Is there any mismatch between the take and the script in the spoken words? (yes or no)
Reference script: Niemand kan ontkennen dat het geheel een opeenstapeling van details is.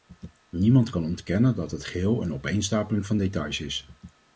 no